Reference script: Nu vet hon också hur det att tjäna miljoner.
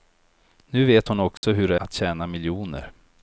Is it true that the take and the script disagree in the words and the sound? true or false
true